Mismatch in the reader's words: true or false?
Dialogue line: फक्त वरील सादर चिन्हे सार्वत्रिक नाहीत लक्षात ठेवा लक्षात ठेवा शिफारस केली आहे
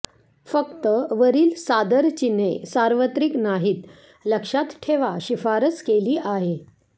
true